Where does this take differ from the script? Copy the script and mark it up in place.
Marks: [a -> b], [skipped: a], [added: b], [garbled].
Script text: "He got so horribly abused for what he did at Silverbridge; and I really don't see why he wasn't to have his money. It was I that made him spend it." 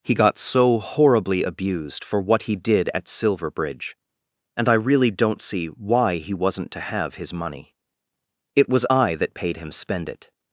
"He got so horribly abused for what he did at Silverbridge; and I really don't see why he wasn't to have his money. It was I that [made -> paid] him spend it."